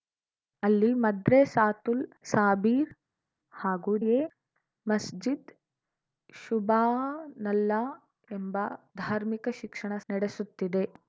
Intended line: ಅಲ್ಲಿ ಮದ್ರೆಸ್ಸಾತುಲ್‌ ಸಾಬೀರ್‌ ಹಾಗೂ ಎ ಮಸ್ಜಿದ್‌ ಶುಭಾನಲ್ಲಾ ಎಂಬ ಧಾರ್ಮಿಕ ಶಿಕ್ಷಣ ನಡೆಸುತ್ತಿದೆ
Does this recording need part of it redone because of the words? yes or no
no